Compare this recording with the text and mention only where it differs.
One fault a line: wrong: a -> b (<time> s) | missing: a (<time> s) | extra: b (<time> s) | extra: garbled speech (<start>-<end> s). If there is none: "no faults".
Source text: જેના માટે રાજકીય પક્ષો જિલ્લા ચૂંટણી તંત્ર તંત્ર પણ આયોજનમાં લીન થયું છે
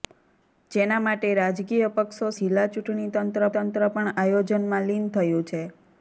no faults